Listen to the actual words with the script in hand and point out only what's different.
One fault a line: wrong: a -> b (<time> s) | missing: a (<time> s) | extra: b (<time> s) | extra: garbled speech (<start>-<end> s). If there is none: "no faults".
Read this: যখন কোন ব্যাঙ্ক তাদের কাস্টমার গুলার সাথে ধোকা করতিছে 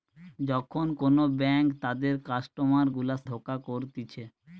missing: সাথে (3.2 s)